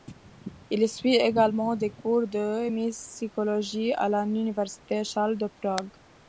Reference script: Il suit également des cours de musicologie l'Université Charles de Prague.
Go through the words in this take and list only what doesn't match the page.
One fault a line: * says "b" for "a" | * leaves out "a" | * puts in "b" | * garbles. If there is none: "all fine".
* puts in "à"